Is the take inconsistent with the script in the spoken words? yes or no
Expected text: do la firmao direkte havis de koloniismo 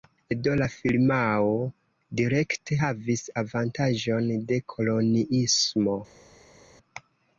yes